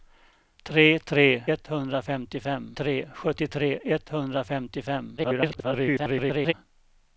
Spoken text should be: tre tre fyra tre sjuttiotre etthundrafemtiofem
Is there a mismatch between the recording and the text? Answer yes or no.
yes